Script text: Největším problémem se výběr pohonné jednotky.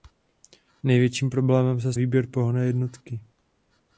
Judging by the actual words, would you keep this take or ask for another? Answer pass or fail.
pass